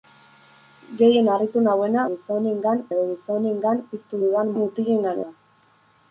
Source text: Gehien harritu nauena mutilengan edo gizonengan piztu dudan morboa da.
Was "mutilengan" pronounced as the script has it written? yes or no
no